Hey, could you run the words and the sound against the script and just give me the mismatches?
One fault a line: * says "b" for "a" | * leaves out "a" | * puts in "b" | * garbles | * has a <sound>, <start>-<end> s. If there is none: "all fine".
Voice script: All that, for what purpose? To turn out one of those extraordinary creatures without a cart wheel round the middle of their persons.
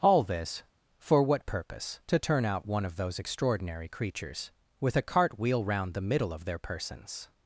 * says "this" for "that"
* says "with" for "without"